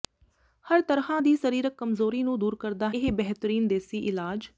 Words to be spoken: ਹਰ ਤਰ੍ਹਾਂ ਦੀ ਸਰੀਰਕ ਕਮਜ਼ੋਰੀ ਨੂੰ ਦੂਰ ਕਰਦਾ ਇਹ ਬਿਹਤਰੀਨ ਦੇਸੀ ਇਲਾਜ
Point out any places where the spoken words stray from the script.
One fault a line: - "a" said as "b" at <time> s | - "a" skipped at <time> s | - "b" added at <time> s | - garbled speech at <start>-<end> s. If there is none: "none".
none